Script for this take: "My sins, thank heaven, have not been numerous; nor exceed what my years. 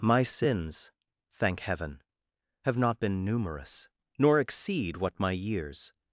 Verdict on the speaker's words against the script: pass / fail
pass